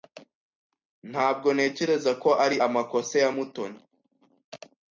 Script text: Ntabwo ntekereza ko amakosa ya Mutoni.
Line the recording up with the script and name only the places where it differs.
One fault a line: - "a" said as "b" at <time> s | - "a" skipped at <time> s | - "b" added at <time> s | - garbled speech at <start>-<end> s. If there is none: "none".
- "ari" added at 2.5 s